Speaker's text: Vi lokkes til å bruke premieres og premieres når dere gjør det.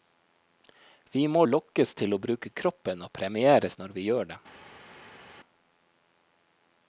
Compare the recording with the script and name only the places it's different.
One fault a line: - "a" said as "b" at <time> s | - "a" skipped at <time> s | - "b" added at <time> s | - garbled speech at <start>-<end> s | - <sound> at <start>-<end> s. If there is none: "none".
- "må" added at 1.3 s
- "premieres" said as "kroppen" at 2.6 s
- "dere" said as "vi" at 4.0 s